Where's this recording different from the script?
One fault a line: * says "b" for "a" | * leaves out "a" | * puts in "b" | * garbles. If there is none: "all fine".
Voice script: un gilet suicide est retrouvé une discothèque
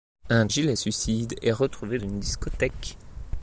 all fine